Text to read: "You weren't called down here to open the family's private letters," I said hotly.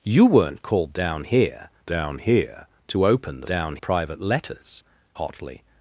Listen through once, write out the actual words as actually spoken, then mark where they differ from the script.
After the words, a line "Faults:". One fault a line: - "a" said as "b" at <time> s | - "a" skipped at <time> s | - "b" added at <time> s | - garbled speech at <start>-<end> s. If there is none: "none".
"You weren't called down here down here to open the down private letters," hotly.
Faults:
- "down here" added at 1.9 s
- "family's" said as "down" at 3.4 s
- "I said" skipped at 4.8 s